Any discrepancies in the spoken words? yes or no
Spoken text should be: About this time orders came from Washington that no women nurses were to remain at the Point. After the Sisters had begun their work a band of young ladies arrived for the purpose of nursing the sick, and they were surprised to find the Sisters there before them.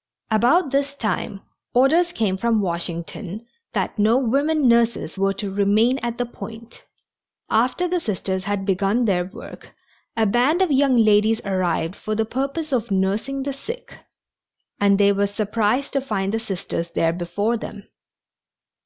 no